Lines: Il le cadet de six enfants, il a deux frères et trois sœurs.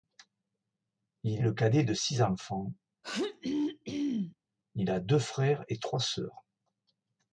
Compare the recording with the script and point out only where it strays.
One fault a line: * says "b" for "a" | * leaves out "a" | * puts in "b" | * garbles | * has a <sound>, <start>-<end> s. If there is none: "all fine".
* has a throat clearing, 3.0-4.4 s